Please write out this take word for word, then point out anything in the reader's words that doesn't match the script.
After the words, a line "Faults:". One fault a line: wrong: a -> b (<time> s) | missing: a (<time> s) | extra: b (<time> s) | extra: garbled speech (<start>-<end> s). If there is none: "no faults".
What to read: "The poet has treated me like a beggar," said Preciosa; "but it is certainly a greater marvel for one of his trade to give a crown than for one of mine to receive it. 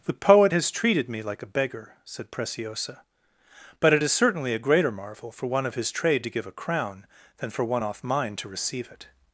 "The poet has treated me like a beggar," said Preciosa; "but it is certainly a greater marvel for one of his trade to give a crown than for one off mine to receive it.
Faults:
wrong: of -> off (7.8 s)